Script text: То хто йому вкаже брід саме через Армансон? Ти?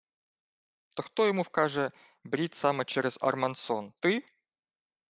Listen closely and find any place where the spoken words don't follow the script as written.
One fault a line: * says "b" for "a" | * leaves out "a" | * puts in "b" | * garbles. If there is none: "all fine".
all fine